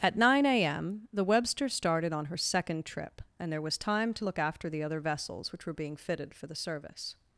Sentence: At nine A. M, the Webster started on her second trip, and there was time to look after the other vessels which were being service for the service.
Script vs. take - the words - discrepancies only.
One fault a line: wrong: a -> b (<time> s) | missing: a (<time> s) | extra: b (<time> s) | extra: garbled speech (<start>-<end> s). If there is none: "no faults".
wrong: service -> fitted (6.0 s)